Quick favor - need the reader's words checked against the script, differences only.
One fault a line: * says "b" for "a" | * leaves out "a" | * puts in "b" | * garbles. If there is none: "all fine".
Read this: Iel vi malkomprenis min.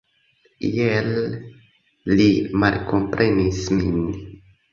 * says "li" for "vi"